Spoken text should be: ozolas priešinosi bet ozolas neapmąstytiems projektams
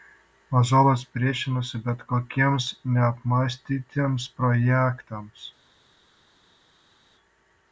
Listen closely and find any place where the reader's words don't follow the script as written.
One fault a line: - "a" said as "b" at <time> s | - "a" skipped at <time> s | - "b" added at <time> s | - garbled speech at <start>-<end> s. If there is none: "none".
- "ozolas" said as "kokiems" at 2.1 s